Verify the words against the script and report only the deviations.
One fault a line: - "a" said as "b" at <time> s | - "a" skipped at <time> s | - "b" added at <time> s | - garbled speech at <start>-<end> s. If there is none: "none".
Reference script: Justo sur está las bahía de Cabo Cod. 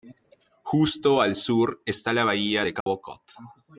- "al" added at 1.2 s
- "las" said as "la" at 2.1 s